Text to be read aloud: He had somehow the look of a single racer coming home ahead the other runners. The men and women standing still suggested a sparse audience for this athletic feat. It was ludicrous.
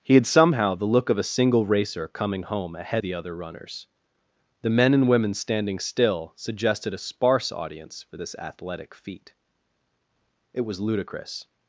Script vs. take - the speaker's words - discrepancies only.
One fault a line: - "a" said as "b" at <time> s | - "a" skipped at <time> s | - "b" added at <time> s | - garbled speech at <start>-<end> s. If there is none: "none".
none